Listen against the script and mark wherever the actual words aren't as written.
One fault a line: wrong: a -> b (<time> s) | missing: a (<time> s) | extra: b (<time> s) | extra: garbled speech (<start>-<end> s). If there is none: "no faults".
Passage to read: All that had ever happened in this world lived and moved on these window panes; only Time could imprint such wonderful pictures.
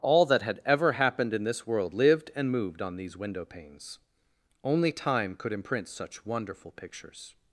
no faults